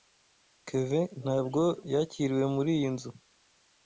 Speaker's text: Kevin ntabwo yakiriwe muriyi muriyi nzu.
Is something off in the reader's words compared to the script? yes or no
yes